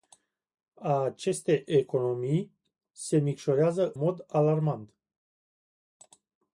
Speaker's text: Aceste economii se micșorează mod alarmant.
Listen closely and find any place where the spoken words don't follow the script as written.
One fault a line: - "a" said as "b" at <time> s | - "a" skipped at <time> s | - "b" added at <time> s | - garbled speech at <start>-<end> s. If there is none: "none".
none